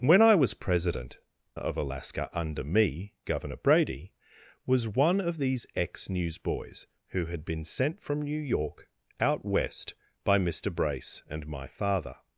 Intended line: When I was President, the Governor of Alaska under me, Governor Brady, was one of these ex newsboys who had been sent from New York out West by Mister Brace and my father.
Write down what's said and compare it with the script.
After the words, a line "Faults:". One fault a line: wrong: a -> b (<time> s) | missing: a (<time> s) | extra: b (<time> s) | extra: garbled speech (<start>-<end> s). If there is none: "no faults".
When I was President, of Alaska under me, Governor Brady, was one of these ex newsboys who had been sent from New York out West by Mister Brace and my father.
Faults:
missing: the Governor (1.2 s)